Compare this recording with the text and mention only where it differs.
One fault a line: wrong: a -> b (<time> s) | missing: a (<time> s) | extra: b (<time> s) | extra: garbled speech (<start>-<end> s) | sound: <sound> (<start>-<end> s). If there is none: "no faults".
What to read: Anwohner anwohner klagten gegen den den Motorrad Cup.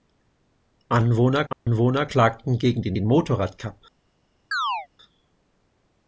sound: dropout (1.5-1.7 s)
sound: chirp (4.5-4.9 s)